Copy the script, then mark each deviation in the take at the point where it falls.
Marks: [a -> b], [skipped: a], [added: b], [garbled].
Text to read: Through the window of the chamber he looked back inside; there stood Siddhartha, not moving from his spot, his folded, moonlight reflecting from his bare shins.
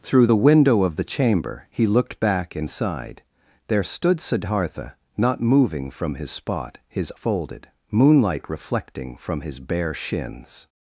Through the window of the chamber he looked back inside; there stood Siddhartha, not moving from his spot, his folded, moonlight reflecting from his bare shins.